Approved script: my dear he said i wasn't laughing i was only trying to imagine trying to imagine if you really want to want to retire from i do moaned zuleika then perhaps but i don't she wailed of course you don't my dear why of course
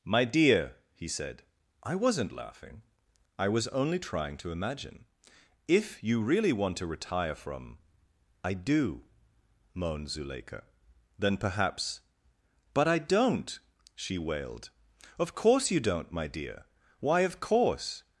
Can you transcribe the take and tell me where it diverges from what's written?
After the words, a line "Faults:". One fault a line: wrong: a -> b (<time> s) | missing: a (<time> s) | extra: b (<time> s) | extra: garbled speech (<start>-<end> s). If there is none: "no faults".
my dear he said i wasn't laughing i was only trying to imagine if you really want to retire from i do moaned zuleika then perhaps but i don't she wailed of course you don't my dear why of course
Faults:
missing: trying to imagine (5.0 s)
missing: want to (6.9 s)